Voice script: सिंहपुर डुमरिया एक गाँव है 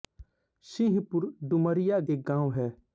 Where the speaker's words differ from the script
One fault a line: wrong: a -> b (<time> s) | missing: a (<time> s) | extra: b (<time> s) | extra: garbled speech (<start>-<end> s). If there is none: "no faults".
no faults